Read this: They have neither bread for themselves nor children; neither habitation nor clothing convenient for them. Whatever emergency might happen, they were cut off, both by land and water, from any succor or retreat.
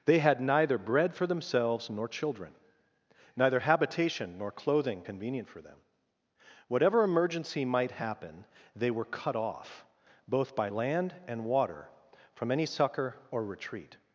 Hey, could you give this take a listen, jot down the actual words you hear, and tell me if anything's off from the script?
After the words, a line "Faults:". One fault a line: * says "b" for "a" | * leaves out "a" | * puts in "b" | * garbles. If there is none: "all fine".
They had neither bread for themselves nor children; neither habitation nor clothing convenient for them. Whatever emergency might happen, they were cut off, both by land and water, from any succor or retreat.
Faults:
* says "had" for "have"